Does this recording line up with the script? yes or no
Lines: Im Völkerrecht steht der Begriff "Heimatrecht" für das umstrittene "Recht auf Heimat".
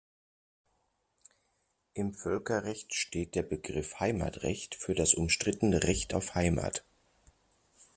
yes